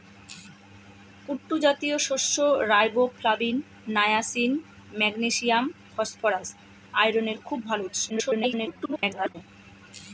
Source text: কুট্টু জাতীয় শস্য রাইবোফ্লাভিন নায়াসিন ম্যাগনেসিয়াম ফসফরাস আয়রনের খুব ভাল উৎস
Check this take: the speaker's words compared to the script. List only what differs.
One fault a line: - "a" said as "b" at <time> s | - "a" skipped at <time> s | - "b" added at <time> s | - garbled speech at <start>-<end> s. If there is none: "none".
- garbled speech at 8.1-9.4 s